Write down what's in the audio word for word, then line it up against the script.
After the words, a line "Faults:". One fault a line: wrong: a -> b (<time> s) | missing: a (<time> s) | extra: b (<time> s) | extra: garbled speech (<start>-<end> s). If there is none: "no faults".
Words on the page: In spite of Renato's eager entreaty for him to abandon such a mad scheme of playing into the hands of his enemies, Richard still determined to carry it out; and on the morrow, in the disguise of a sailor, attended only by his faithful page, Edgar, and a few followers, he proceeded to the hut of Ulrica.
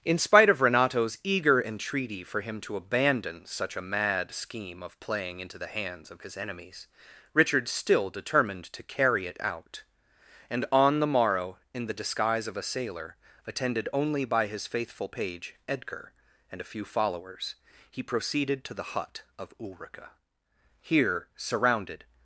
In spite of Renato's eager entreaty for him to abandon such a mad scheme of playing into the hands of his enemies, Richard still determined to carry it out; and on the morrow, in the disguise of a sailor, attended only by his faithful page, Edgar, and a few followers, he proceeded to the hut of Ulrica. Here, surrounded
Faults:
extra: Here surrounded (20.8 s)